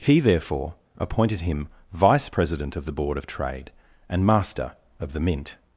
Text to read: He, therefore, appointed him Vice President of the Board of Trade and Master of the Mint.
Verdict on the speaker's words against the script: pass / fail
pass